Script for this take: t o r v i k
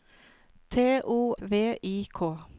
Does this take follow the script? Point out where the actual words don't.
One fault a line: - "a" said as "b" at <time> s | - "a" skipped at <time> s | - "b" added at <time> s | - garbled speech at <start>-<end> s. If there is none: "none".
- "r" skipped at 1.4 s